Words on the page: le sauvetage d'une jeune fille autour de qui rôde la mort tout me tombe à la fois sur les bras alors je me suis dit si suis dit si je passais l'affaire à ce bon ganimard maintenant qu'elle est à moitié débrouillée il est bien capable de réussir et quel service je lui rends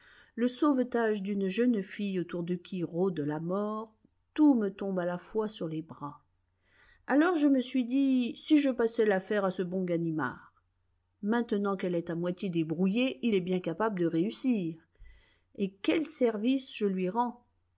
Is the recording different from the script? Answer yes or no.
yes